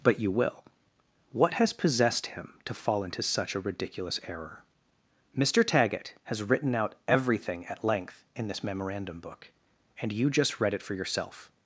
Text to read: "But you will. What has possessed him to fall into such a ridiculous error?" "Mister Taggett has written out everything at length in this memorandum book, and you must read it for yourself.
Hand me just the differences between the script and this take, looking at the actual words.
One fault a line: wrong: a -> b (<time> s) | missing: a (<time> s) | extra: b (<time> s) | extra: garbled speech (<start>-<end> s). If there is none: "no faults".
wrong: must -> just (10.3 s)